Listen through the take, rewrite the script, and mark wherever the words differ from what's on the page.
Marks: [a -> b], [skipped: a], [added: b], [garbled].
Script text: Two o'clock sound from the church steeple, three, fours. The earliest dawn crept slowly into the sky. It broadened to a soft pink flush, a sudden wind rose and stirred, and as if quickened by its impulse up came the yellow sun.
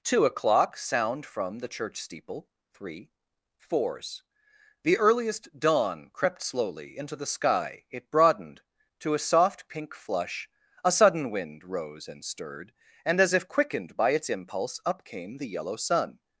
Two o'clock sound from the church steeple, three, fours. The earliest dawn crept slowly into the sky. It broadened to a soft pink flush, a sudden wind rose and stirred, and as if quickened by its impulse up came the yellow sun.